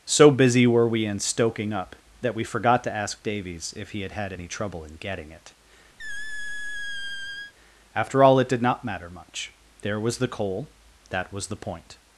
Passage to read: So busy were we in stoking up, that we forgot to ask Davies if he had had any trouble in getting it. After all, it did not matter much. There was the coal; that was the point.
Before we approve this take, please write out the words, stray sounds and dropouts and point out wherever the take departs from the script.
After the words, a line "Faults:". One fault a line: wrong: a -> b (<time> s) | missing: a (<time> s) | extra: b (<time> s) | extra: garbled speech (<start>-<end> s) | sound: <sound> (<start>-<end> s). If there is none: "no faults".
So busy were we in stoking up, that we forgot to ask Davies if he had had any trouble in getting it. After all, it did not matter much. There was the coal; that was the point.
Faults:
sound: squeak (6.0-7.5 s)